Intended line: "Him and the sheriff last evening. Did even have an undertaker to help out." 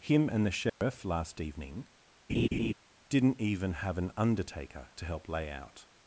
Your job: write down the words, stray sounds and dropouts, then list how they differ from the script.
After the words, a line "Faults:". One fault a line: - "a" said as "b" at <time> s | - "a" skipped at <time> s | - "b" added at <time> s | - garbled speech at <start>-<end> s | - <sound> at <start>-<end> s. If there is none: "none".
"Him and the sheriff last evening. Didn't even have an undertaker to help lay out."
Faults:
- dropout at 0.7-0.8 s
- laugh at 2.3-2.7 s
- "Did" said as "Didn't" at 3.1 s
- "lay" added at 5.3 s